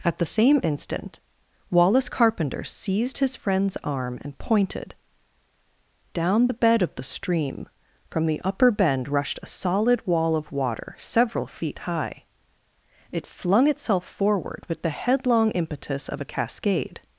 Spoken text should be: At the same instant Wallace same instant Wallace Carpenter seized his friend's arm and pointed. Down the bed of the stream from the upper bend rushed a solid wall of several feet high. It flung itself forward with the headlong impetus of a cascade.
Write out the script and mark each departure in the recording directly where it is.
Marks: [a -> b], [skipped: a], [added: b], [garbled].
At the same instant Wallace [skipped: same instant Wallace] Carpenter seized his friend's arm and pointed. Down the bed of the stream from the upper bend rushed a solid wall of [added: water] several feet high. It flung itself forward with the headlong impetus of a cascade.